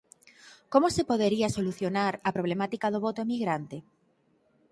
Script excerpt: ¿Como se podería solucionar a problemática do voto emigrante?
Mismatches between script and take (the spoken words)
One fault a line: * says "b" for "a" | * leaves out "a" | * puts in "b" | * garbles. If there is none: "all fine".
all fine